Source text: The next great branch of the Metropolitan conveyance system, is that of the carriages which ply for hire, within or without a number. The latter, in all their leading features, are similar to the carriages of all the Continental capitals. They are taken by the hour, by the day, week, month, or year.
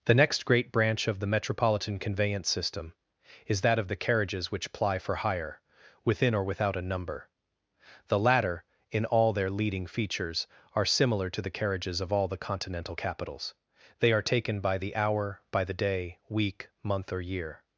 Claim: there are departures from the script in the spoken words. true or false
false